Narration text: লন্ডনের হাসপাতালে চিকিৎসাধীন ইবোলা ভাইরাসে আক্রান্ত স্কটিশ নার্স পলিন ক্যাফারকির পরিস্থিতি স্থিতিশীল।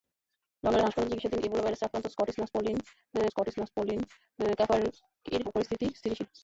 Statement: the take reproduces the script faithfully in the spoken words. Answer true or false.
false